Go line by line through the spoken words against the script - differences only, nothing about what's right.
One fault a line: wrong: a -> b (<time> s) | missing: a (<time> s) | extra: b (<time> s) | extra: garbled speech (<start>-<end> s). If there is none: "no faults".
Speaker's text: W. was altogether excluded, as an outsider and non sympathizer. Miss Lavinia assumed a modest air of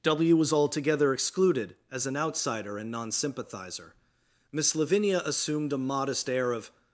no faults